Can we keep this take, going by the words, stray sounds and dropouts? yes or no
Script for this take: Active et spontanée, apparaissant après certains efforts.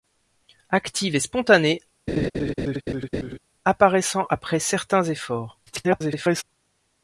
no